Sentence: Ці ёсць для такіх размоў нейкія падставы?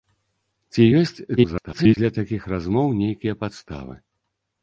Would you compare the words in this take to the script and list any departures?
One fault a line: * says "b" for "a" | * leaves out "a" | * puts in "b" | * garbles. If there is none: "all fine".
* garbles